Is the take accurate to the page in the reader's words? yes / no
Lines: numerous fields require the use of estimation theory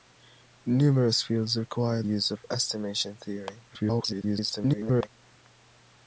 no